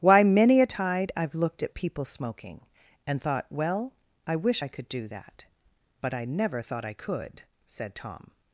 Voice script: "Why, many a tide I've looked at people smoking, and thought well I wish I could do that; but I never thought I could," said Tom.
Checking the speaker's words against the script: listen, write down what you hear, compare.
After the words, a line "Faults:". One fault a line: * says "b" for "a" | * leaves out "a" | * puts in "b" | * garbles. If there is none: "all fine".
"Why, many a tide I've looked at people smoking, and thought well I wish I could do that; but I never thought I could," said Tom.
Faults:
all fine